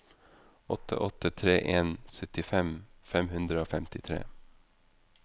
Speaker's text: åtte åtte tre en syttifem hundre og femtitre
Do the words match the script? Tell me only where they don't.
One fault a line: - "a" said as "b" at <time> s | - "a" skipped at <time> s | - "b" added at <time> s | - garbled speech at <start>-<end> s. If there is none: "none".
- "fem" added at 3.1 s